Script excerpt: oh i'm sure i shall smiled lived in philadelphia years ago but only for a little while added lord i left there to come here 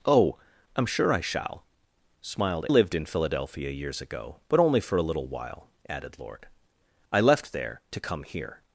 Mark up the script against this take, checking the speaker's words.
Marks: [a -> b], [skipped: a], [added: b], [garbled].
oh i'm sure i shall smiled lived in philadelphia years ago but only for a little while added lord i left there to come here